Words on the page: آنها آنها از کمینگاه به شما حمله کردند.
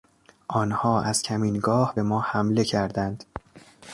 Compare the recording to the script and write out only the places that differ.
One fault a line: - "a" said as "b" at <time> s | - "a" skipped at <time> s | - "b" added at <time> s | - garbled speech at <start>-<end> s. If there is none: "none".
- "آنها" skipped at 1.0 s
- "شما" said as "ما" at 2.0 s